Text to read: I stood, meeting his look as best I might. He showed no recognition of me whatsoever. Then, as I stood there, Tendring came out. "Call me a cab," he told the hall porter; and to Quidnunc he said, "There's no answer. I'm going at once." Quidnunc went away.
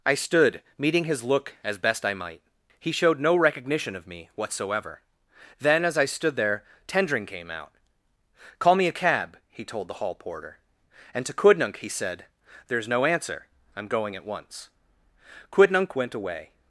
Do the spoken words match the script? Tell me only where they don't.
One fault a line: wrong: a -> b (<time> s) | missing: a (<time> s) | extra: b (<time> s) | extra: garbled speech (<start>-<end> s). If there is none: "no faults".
no faults